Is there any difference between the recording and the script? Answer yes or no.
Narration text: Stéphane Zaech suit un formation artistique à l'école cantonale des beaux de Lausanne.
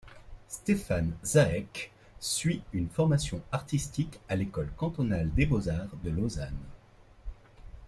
yes